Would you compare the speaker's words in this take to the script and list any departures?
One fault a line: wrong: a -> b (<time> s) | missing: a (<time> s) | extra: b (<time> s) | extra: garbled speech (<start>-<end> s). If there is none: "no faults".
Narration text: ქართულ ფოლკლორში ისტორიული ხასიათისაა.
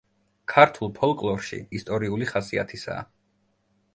no faults